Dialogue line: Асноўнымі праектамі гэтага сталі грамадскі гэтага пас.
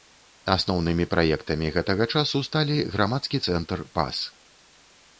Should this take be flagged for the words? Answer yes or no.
yes